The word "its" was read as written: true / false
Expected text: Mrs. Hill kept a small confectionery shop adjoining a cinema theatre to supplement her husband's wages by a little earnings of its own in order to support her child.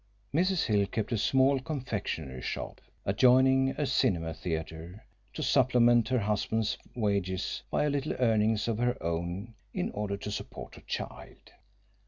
false